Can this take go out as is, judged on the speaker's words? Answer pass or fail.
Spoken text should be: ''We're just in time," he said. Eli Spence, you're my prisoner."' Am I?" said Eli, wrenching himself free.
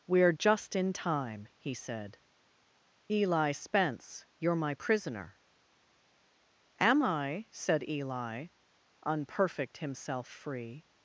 fail